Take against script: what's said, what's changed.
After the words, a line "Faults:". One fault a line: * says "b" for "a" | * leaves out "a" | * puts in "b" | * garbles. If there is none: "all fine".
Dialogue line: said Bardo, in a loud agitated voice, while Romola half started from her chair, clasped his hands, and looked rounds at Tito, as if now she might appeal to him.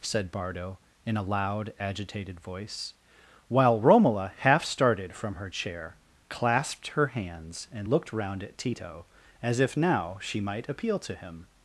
said Bardo, in a loud agitated voice, while Romola half started from her chair, clasped her hands, and looked round at Tito, as if now she might appeal to him.
Faults:
* says "her" for "his"
* says "round" for "rounds"